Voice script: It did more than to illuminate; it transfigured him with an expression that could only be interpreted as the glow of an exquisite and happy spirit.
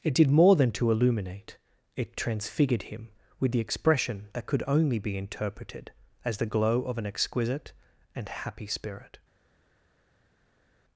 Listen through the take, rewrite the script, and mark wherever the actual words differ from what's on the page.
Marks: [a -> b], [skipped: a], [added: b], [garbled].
It did more than to illuminate; it transfigured him with [an -> the] expression that could only be interpreted as the glow of an exquisite and happy spirit.